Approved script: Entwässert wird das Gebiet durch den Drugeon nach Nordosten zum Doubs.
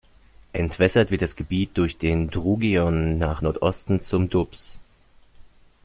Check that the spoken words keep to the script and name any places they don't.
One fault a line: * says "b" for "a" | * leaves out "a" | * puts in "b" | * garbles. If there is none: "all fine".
all fine